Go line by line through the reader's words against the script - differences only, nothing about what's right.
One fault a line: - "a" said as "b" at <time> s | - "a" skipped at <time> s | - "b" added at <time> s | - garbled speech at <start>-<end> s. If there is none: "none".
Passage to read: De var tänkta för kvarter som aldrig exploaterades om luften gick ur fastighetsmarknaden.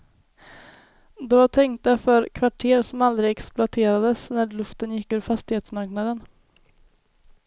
- "om" said as "när" at 4.3 s